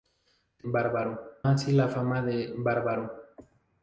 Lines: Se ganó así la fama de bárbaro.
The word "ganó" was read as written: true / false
false